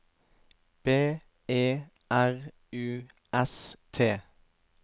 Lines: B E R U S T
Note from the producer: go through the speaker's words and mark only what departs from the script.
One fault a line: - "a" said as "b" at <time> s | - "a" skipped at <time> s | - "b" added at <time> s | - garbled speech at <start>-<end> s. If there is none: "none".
none